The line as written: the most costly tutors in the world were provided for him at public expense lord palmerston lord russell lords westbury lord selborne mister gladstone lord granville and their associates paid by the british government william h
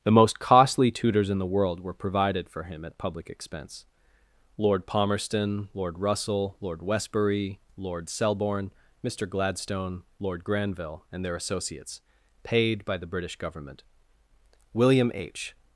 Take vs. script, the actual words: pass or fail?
fail